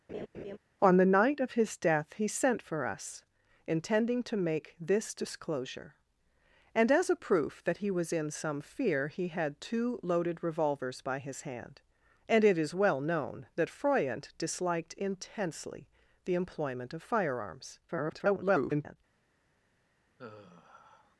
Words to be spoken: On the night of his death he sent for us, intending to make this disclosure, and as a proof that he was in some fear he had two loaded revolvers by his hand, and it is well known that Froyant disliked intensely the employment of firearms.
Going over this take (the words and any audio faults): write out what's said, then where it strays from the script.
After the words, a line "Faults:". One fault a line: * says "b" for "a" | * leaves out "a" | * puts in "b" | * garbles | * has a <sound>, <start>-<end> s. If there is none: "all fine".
On the night of his death he sent for us, intending to make this disclosure, and as a proof that he was in some fear he had two loaded revolvers by his hand, and it is well known that Froyant disliked intensely the employment of firearms. [garbled]
Faults:
* has a laugh, 0.1-0.6 s
* garbles
* has a sigh, 20.2-21.2 s